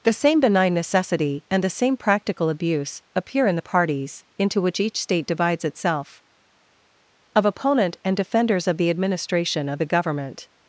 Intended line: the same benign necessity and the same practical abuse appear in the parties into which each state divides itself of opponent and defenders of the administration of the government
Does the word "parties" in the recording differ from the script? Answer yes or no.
no